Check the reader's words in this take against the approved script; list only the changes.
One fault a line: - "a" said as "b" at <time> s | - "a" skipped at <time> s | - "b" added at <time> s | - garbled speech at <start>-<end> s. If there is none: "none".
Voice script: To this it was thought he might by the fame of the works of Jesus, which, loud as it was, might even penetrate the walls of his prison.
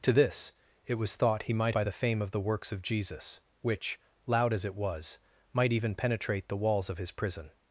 none